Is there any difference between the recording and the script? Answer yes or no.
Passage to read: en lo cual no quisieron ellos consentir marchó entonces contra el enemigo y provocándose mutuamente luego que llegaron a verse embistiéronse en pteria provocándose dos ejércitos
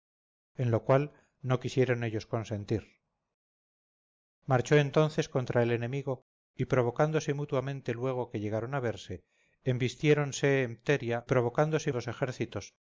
no